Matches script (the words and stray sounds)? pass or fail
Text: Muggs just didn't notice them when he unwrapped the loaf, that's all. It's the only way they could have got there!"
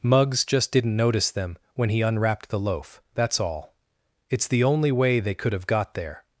pass